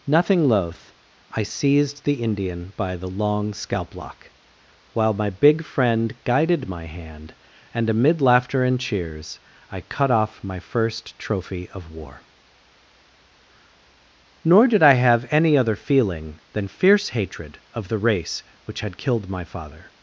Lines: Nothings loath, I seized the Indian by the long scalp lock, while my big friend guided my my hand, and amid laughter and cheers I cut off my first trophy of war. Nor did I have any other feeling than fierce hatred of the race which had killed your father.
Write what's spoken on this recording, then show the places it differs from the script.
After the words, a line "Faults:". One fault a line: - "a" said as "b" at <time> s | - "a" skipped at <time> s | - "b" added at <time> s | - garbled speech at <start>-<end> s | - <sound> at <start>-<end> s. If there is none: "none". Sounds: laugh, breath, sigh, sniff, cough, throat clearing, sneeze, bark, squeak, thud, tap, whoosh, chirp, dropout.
Nothing loath, I seized the Indian by the long scalp lock, while my big friend guided my hand, and amid laughter and cheers I cut off my first trophy of war. Nor did I have any other feeling than fierce hatred of the race which had killed my father.
Faults:
- "Nothings" said as "Nothing" at 0.1 s
- "my" skipped at 6.9 s
- "your" said as "my" at 19.3 s